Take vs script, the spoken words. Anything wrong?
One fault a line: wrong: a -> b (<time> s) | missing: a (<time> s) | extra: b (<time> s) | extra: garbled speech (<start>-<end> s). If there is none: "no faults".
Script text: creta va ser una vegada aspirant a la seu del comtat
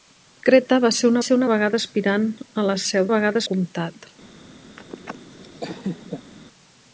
extra: ser una (1.3 s)
wrong: del -> vegada (3.1 s)